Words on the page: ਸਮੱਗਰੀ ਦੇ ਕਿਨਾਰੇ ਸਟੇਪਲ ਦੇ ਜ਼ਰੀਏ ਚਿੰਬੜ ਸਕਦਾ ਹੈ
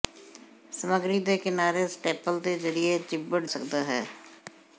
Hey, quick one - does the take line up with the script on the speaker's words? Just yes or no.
yes